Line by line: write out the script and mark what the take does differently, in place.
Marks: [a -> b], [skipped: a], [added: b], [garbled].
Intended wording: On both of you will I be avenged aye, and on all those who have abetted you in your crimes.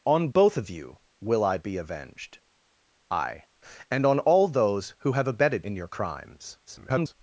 On both of you will I be avenged aye, and on all those who have abetted [skipped: you] in your crimes. [garbled]